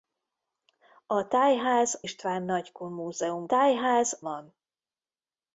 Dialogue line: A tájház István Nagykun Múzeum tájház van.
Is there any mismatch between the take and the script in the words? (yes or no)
no